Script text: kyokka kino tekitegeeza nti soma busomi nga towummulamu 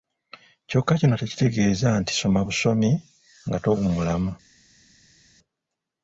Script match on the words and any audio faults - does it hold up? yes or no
yes